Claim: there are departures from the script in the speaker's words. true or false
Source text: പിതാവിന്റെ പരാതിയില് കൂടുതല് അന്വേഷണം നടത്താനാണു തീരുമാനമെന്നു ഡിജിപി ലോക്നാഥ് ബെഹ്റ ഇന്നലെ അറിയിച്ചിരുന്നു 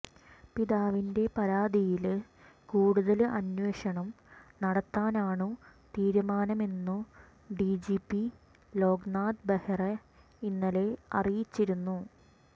false